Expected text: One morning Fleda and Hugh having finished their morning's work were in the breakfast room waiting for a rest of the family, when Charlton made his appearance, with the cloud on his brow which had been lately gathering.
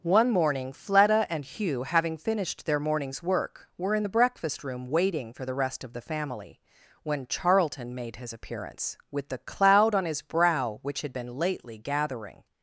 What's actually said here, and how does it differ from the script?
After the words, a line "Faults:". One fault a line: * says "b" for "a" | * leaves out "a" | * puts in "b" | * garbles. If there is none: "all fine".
One morning Fleda and Hugh having finished their morning's work were in the breakfast room waiting for the rest of the family, when Charlton made his appearance, with the cloud on his brow which had been lately gathering.
Faults:
* says "the" for "a"